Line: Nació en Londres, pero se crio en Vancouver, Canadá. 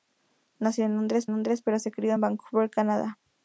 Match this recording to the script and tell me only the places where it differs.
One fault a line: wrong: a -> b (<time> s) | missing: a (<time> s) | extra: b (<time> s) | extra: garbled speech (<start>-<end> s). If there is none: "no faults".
extra: Londres (1.3 s)